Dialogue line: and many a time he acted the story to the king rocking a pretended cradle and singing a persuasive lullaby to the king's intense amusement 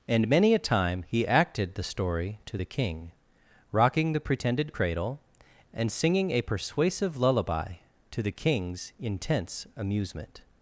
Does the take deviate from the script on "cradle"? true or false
false